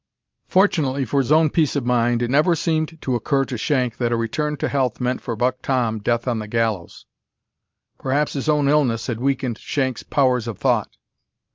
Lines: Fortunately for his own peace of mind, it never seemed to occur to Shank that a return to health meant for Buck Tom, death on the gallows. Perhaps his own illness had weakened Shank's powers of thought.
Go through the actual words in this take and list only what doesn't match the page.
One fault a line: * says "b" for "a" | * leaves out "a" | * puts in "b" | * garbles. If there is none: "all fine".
all fine